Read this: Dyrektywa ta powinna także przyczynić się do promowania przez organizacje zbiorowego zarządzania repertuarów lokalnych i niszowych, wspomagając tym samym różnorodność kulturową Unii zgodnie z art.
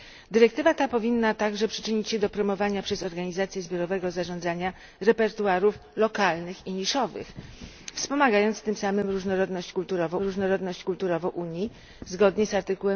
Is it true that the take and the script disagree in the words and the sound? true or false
true